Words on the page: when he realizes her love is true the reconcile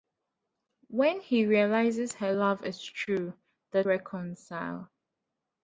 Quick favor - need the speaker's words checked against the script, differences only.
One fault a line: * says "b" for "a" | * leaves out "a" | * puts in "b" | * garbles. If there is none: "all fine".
all fine